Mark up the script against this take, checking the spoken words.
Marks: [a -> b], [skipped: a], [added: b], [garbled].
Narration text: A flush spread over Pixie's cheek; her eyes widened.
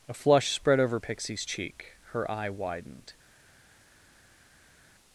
A flush spread over Pixie's cheek; her [eyes -> eye] widened.